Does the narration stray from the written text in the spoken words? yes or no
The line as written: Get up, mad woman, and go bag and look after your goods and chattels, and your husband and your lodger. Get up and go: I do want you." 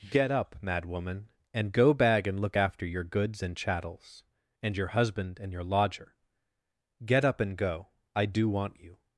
no